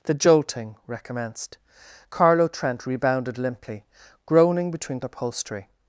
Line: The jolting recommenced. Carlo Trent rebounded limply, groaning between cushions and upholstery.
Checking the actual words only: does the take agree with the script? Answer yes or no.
no